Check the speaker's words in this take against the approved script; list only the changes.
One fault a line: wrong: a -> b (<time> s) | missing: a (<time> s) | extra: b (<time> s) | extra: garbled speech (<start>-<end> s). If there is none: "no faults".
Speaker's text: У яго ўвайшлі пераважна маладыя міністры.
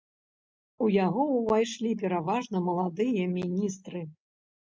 no faults